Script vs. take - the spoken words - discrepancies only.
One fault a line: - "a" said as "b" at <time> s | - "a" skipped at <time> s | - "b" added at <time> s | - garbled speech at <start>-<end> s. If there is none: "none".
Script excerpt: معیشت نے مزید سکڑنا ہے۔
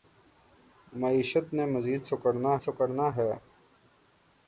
- "سکڑنا" added at 2.6 s